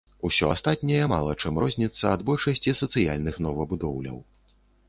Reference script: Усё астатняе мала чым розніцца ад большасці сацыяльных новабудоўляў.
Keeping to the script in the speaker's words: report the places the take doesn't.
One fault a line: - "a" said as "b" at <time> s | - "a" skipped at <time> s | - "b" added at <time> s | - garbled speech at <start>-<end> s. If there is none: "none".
none